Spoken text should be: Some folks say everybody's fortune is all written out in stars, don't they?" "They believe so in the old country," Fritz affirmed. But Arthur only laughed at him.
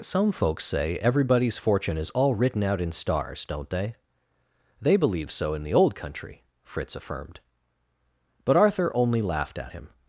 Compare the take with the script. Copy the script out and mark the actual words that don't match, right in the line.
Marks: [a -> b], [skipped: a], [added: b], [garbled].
Some folks say everybody's fortune is all written out in stars, don't they?" "They believe so in the old country," Fritz affirmed. But Arthur only laughed at him.